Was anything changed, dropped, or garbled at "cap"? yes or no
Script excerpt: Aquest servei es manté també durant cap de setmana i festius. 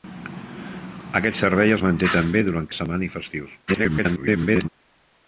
yes